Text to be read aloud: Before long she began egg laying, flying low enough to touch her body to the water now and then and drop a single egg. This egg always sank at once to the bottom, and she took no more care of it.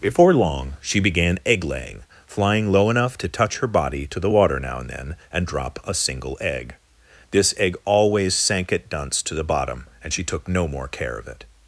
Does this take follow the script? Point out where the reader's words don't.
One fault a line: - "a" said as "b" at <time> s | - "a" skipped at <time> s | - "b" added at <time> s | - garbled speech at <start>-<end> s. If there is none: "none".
- "once" said as "dunce" at 8.9 s